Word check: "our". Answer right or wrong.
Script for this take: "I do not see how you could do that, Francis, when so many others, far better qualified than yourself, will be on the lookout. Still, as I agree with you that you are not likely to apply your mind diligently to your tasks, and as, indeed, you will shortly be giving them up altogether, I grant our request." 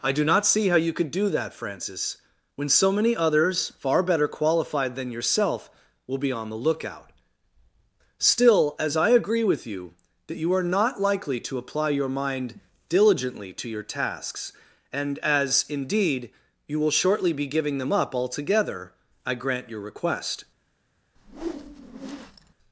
wrong